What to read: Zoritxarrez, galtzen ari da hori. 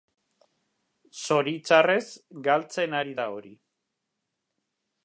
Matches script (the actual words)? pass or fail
pass